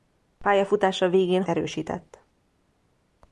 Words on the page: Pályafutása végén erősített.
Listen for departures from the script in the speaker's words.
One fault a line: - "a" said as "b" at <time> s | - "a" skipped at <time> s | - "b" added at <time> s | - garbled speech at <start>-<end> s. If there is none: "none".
none